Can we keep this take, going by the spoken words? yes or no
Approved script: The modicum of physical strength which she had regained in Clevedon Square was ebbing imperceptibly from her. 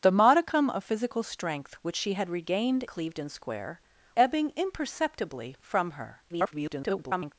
no